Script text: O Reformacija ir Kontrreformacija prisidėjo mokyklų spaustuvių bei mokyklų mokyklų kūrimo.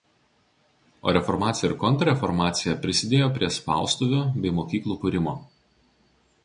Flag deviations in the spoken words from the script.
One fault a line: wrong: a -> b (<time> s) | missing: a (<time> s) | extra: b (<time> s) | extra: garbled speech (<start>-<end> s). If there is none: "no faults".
wrong: mokyklų -> prie (3.4 s)
missing: mokyklų (5.0 s)